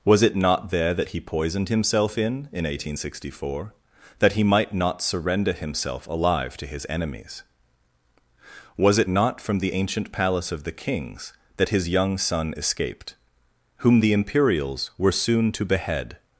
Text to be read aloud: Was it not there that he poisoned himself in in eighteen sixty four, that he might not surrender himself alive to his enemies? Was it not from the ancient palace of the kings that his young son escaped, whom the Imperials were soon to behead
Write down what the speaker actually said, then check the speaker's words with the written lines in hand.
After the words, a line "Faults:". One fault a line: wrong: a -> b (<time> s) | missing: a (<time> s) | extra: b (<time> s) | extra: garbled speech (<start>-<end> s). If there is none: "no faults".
Was it not there that he poisoned himself in in eighteen sixty four, that he might not surrender himself alive to his enemies? Was it not from the ancient palace of the kings that his young son escaped, whom the Imperials were soon to behead
Faults:
no faults